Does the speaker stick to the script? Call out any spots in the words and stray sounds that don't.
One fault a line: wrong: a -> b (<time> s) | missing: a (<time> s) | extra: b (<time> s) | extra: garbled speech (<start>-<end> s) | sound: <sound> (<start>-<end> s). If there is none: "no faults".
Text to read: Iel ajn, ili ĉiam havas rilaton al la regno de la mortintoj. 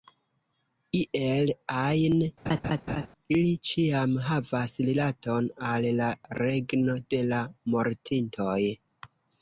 sound: laugh (2.5-3.1 s)